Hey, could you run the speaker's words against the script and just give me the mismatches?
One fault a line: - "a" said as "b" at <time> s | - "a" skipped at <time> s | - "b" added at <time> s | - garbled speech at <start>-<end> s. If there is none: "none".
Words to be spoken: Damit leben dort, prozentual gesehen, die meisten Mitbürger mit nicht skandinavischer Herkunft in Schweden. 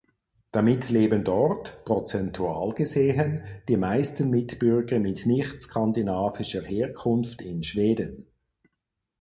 none